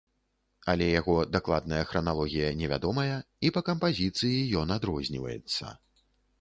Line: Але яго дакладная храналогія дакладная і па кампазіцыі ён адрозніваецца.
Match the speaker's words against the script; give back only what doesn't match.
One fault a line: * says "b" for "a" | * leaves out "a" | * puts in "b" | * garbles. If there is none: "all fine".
* says "невядомая" for "дакладная"